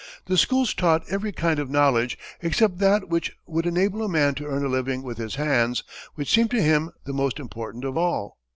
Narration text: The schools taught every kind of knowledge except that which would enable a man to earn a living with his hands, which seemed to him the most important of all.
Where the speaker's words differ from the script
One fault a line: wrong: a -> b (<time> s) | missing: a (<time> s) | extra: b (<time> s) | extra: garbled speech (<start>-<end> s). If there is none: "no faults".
no faults